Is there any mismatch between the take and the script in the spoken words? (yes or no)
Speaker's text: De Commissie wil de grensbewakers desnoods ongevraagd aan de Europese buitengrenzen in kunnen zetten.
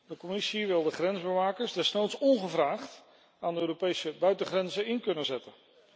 no